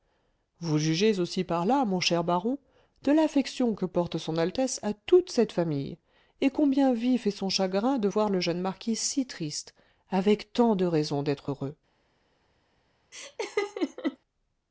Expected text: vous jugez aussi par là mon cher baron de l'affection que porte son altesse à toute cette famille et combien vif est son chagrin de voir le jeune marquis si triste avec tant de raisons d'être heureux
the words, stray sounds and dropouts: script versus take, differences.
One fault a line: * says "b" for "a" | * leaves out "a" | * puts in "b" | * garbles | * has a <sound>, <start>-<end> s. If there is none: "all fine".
* has a laugh, 13.1-14.2 s